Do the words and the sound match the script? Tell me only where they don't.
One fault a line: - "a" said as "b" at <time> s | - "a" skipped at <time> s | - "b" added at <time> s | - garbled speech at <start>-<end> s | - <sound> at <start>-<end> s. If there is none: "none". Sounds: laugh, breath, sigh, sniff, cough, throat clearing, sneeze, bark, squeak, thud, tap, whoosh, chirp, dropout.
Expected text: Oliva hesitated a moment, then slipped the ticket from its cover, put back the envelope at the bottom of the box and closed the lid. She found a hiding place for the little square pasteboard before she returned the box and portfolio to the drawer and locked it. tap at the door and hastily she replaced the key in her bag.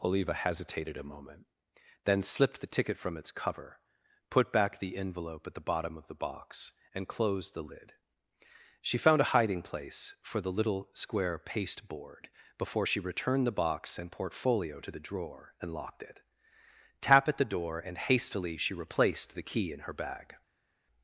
none